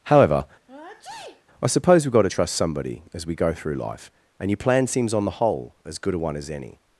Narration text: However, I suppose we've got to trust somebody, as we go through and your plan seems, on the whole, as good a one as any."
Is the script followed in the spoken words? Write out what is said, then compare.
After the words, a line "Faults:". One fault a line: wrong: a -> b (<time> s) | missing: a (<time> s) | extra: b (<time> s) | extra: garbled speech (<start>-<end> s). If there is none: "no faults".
However, I suppose we've got to trust somebody, as we go through life, and your plan seems, on the whole, as good a one as any."
Faults:
extra: life (3.8 s)